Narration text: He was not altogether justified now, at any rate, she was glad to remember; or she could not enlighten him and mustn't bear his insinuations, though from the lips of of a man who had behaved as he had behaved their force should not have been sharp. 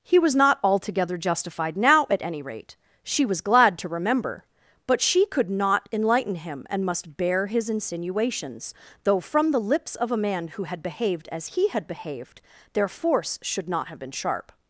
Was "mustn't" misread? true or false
true